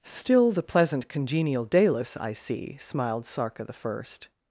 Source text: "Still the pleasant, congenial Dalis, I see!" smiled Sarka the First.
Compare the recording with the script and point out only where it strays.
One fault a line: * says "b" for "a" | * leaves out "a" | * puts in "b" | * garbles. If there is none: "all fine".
all fine